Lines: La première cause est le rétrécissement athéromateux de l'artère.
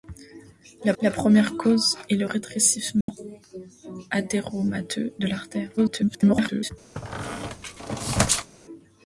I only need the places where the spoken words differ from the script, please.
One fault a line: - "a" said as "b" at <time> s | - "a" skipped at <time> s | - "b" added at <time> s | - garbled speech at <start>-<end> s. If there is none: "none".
- "la" added at 1.0 s
- garbled speech at 5.8-6.7 s